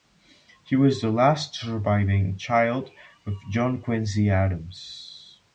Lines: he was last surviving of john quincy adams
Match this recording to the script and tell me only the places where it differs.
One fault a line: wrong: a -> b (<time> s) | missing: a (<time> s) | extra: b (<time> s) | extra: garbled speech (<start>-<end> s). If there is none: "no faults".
extra: the (1.0 s)
extra: child (2.4 s)